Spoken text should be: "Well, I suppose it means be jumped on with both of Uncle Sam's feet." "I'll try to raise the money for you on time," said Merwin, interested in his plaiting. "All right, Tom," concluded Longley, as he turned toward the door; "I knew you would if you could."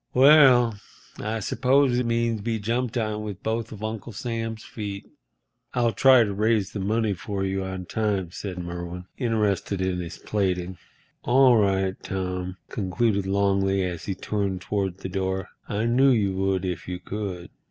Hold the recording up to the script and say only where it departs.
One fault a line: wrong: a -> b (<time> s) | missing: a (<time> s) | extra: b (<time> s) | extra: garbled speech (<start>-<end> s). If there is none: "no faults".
no faults